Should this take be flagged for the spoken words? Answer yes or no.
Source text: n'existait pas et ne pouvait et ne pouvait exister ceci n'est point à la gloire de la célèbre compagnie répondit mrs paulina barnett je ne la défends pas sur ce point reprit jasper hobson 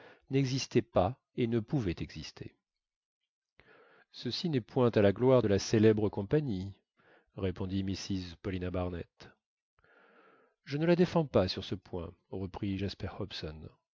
yes